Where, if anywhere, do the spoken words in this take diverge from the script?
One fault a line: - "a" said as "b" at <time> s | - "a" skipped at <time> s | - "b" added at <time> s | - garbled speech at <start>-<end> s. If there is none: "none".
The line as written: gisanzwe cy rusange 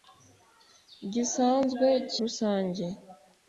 none